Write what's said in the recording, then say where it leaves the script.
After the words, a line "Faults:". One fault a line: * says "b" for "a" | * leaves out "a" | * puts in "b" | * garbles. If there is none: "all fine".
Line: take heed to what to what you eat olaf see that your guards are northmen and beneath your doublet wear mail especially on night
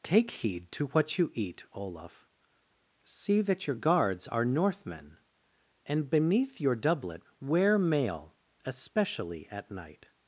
take heed to what you eat olaf see that your guards are northmen and beneath your doublet wear mail especially at night
Faults:
* leaves out "to what"
* says "at" for "on"